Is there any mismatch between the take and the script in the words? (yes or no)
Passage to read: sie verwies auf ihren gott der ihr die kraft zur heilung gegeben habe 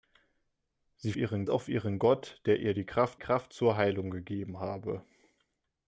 yes